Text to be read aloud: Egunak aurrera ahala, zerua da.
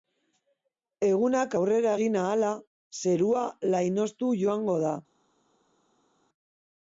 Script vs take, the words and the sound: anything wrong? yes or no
yes